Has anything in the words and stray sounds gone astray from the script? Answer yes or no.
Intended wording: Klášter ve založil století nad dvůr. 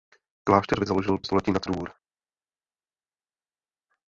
no